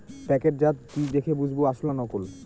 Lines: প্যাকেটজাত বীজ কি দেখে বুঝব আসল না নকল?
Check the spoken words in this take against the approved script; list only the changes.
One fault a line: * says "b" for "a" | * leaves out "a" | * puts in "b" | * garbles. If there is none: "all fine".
* leaves out "বীজ"